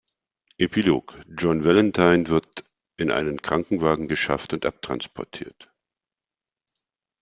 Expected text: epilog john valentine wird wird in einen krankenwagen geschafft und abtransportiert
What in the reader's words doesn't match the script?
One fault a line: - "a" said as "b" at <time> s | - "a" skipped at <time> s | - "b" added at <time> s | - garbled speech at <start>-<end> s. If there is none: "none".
- "wird" skipped at 2.6 s